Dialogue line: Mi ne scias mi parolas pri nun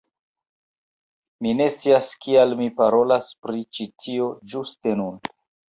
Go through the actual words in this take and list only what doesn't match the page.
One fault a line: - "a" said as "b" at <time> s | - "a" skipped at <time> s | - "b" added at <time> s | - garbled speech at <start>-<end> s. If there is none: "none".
- "kial" added at 2.2 s
- "ĉi tio ĝuste" added at 3.8 s